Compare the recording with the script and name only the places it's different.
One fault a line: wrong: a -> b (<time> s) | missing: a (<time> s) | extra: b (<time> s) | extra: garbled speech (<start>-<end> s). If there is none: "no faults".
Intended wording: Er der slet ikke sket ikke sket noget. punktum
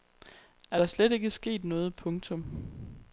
missing: ikke sket (1.6 s)